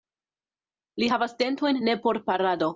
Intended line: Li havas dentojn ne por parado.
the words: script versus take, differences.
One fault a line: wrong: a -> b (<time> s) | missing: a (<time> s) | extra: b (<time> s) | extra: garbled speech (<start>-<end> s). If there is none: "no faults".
no faults